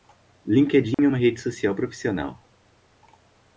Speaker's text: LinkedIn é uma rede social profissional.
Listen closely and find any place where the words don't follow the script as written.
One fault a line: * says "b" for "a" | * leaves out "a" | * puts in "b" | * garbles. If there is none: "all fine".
all fine